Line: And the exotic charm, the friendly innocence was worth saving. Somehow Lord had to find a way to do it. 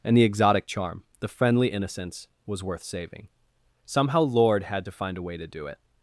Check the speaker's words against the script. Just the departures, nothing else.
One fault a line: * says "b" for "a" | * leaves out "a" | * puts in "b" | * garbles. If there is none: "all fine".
all fine